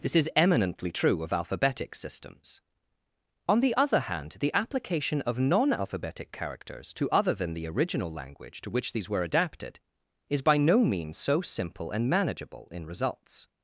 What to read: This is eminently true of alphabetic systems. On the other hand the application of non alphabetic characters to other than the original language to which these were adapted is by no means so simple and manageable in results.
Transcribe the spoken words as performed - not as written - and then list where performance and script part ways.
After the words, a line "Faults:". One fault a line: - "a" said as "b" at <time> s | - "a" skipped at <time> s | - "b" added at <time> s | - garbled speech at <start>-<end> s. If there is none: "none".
This is eminently true of alphabetic systems. On the other hand the application of non alphabetic characters to other than the original language to which these were adapted is by no means so simple and manageable in results.
Faults:
none